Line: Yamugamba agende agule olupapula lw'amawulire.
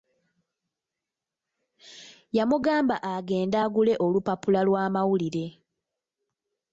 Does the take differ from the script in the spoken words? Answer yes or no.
no